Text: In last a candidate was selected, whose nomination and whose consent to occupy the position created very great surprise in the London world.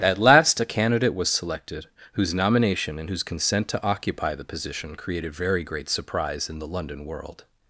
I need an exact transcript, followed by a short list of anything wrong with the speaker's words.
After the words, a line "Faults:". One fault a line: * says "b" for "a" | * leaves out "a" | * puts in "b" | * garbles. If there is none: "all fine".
At last a candidate was selected, whose nomination and whose consent to occupy the position created very great surprise in the London world.
Faults:
* says "At" for "In"